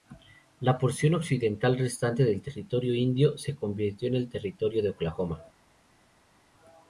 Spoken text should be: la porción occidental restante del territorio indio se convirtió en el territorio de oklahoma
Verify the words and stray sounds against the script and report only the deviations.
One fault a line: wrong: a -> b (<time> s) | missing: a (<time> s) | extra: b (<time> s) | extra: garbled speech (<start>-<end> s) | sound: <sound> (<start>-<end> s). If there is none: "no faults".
no faults